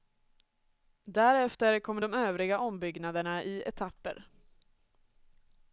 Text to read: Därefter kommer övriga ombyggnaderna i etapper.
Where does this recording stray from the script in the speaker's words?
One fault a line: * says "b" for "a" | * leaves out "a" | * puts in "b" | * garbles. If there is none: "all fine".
* puts in "de"